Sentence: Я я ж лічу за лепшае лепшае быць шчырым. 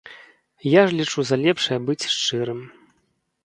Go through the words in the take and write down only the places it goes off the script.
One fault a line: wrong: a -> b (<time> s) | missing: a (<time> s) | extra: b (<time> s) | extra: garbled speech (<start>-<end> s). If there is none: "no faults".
missing: я (0.8 s)
missing: лепшае (1.8 s)